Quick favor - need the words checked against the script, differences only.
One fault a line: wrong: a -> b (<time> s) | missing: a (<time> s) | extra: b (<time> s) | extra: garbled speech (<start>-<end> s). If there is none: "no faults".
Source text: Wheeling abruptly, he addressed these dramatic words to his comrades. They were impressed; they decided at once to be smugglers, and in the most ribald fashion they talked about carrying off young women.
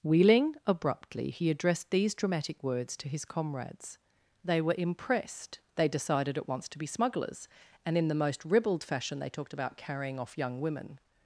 no faults